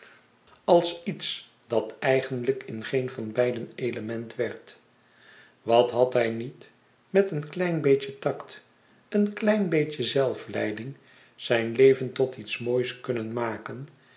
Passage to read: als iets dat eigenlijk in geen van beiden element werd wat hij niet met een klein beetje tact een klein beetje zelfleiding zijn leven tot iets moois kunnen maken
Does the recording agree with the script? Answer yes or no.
no